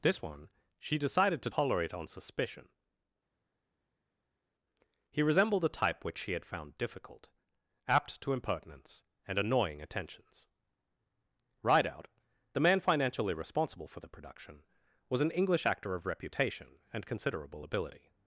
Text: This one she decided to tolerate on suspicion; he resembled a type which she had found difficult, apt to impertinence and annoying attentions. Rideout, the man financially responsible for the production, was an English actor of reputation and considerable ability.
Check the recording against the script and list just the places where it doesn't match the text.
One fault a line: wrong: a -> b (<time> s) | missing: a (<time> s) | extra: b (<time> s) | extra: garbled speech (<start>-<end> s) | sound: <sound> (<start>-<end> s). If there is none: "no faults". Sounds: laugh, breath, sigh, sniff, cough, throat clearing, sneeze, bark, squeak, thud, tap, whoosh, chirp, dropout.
no faults